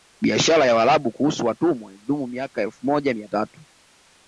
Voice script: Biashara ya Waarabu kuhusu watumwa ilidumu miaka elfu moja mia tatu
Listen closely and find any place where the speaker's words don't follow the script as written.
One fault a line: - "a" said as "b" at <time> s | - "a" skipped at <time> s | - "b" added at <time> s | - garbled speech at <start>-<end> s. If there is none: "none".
none